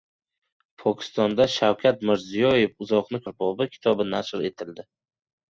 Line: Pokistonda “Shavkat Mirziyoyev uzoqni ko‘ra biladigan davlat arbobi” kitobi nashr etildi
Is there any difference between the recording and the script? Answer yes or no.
yes